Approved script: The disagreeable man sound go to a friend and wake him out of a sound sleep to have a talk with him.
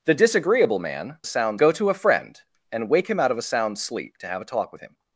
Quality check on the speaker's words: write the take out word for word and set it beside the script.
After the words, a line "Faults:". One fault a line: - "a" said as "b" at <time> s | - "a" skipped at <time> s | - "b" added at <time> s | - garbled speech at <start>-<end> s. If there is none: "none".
The disagreeable man sound go to a friend and wake him out of a sound sleep to have a talk with him.
Faults:
none